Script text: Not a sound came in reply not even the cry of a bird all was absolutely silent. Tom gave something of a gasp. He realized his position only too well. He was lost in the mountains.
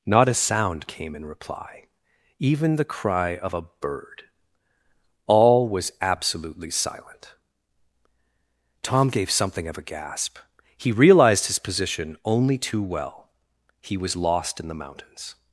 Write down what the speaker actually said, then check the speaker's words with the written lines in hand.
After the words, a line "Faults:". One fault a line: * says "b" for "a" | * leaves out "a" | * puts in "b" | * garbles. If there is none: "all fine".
Not a sound came in reply even the cry of a bird all was absolutely silent. Tom gave something of a gasp. He realized his position only too well. He was lost in the mountains.
Faults:
* leaves out "not"